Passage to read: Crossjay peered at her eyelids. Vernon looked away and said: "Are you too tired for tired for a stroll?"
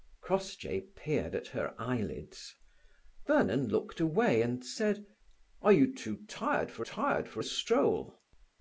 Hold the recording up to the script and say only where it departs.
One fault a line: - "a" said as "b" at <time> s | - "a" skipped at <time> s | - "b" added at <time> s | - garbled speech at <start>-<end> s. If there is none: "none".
none